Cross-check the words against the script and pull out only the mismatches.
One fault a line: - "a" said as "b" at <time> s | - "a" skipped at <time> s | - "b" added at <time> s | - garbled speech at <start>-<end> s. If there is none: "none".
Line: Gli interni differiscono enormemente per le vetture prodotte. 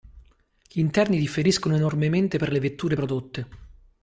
none